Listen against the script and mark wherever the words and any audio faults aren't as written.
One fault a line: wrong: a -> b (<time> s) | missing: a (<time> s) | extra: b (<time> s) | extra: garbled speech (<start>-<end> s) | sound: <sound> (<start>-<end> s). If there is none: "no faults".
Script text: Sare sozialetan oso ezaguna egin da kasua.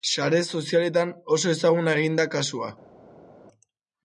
no faults